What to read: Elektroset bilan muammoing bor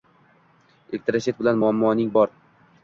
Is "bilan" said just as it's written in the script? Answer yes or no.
yes